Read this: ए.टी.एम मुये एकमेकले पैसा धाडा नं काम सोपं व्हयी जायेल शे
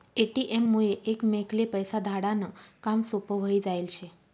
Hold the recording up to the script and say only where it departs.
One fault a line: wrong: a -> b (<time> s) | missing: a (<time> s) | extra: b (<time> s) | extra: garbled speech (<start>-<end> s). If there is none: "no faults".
no faults